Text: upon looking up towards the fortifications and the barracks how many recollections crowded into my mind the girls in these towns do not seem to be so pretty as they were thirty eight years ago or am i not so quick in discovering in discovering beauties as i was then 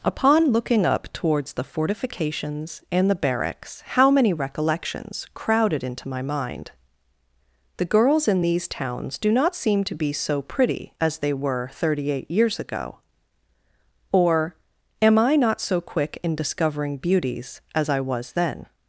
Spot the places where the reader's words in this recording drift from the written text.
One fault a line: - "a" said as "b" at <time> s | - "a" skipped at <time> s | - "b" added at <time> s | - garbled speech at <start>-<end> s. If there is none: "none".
- "in discovering" skipped at 17.0 s